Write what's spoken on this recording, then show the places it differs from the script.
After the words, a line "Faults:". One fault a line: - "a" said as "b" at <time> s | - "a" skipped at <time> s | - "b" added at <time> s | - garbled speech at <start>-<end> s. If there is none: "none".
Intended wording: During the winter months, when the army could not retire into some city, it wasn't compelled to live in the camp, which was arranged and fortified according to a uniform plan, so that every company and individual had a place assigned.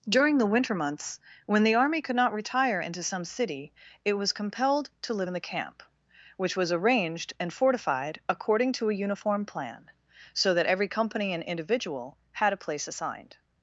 During the winter months, when the army could not retire into some city, it was compelled to live in the camp, which was arranged and fortified according to a uniform plan, so that every company and individual had a place assigned.
Faults:
- "wasn't" said as "was" at 4.1 s